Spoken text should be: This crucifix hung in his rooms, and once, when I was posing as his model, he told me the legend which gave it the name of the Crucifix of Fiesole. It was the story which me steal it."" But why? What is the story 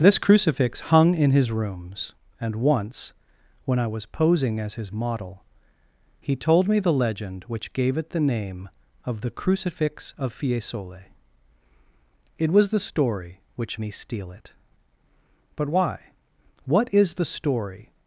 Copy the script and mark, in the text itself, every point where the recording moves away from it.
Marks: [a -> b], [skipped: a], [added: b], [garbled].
This crucifix hung in his rooms, and once, when I was posing as his model, he told me the legend which gave it the name of the Crucifix of Fiesole. It was the story which me steal it."" But why? What is the story